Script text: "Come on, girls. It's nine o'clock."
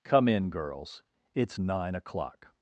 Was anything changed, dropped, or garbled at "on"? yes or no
yes